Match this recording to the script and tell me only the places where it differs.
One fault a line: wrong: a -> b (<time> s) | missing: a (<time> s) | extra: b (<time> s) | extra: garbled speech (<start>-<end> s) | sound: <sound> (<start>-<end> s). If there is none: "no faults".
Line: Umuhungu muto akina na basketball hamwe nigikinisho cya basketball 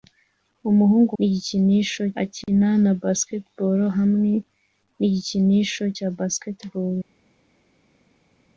wrong: muto -> nigikinisho (1.2 s)